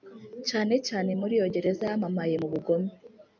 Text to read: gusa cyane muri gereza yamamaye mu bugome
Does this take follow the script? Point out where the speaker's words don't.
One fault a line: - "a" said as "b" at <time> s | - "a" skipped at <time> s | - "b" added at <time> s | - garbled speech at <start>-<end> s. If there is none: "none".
- "gusa" said as "cyane" at 0.5 s
- "iyo" added at 1.4 s